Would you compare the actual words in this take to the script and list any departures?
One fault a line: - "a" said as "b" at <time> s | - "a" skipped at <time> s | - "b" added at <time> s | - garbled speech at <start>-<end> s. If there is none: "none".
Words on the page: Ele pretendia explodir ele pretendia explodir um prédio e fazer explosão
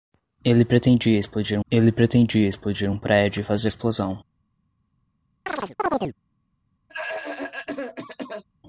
none